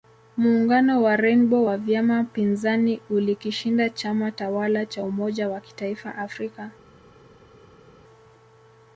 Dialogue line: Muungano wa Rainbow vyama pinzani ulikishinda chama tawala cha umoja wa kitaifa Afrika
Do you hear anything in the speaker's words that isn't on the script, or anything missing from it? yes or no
yes